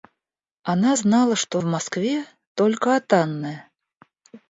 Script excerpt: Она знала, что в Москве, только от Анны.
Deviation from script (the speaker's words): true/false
false